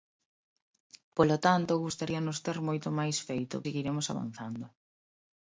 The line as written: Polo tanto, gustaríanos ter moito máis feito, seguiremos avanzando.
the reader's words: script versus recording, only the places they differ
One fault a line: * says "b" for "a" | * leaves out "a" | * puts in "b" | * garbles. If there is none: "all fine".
all fine